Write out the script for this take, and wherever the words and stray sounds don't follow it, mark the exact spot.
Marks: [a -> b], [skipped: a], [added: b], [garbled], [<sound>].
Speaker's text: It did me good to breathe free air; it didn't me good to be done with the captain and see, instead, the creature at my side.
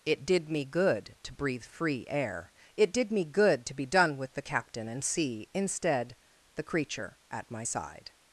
It did me good to breathe free air; it [didn't -> did] me good to be done with the captain and see, instead, the creature at my side.